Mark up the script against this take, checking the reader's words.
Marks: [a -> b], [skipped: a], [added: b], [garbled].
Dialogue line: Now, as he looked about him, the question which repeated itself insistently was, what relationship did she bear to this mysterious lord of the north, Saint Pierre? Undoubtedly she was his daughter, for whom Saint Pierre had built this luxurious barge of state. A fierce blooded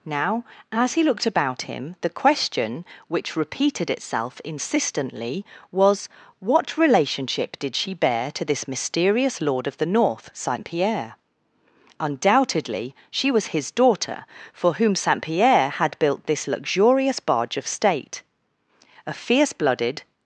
Now, as he looked about him, the question which repeated itself insistently was, what relationship did she bear to this mysterious lord of the north, Saint Pierre? Undoubtedly she was his daughter, for whom Saint Pierre had built this luxurious barge of state. A fierce blooded